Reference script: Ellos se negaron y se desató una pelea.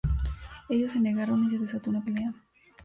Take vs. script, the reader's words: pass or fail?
pass